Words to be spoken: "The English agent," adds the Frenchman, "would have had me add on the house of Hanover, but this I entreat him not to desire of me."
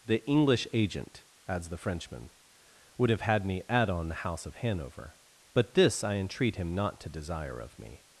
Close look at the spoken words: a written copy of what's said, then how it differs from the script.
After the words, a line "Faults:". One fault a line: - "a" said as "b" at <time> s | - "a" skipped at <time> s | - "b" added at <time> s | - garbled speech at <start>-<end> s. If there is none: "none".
"The English agent," adds the Frenchman, "would have had me add on the house of Hanover, but this I entreat him not to desire of me."
Faults:
none